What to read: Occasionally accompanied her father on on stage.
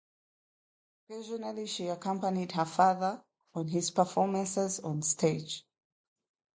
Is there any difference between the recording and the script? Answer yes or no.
yes